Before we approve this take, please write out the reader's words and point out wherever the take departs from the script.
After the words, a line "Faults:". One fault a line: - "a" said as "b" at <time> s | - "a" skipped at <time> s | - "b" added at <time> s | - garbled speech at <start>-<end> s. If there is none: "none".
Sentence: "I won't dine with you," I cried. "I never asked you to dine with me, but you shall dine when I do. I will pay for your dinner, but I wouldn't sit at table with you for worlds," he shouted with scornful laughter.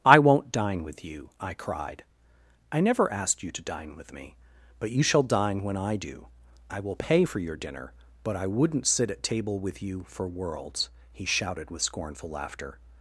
"I won't dine with you," I cried. "I never asked you to dine with me, but you shall dine when I do. I will pay for your dinner, but I wouldn't sit at table with you for worlds," he shouted with scornful laughter.
Faults:
none